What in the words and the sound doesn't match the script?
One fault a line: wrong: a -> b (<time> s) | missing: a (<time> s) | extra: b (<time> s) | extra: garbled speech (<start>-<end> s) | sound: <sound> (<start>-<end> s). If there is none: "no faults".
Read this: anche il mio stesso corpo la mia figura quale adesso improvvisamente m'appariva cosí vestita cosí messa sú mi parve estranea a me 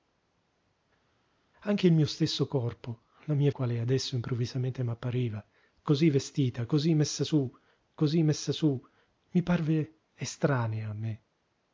missing: figura (3.5 s)
extra: cosí messa sú (7.9 s)